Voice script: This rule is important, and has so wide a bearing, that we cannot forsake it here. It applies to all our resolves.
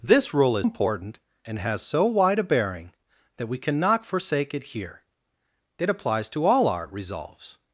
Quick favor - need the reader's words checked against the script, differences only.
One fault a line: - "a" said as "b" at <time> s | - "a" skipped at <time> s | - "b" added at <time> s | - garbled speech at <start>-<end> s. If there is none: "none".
none